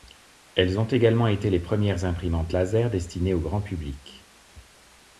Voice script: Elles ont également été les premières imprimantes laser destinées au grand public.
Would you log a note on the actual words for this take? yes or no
no